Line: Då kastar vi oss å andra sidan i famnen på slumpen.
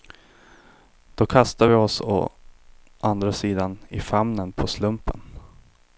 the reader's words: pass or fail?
pass